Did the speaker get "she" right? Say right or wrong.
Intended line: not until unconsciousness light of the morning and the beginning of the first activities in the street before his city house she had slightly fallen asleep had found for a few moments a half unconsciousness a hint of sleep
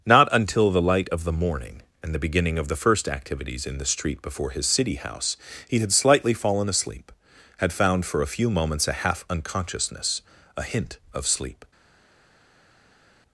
wrong